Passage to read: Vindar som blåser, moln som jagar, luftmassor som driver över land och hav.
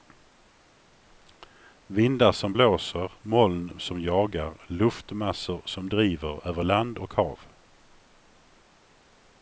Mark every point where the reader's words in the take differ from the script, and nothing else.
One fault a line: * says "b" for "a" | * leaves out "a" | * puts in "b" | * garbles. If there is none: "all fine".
all fine